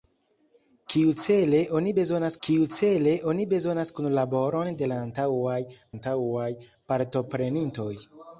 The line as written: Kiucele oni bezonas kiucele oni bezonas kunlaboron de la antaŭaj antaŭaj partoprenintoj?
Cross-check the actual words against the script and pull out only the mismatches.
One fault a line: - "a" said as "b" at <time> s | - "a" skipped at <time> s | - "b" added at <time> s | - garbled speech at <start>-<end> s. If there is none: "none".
none